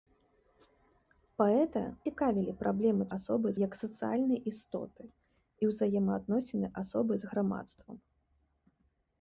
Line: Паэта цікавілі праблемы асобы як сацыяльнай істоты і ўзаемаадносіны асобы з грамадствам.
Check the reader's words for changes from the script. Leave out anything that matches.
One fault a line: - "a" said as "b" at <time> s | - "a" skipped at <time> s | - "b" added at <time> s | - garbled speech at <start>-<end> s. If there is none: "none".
none